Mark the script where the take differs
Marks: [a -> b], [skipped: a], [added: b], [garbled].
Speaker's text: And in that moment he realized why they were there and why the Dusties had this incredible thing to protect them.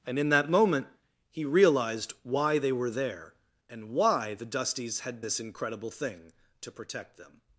And in that moment he realized why they were there and why the Dusties had this incredible thing to protect them.